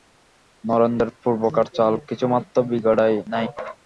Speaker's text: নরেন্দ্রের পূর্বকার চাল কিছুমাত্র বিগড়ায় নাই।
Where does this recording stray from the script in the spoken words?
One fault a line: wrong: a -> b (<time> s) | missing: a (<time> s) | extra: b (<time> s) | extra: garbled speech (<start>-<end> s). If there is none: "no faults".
no faults